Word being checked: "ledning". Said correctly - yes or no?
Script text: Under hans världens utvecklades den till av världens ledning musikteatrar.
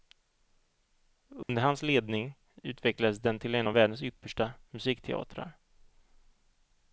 no